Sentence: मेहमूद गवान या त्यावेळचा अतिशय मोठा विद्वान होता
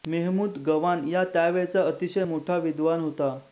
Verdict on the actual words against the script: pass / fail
pass